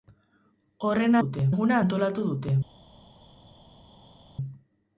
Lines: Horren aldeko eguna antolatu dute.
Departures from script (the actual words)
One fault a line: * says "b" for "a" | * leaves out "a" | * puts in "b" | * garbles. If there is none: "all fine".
* says "dute" for "aldeko"